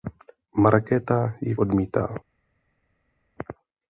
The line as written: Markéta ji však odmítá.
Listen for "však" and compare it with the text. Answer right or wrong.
wrong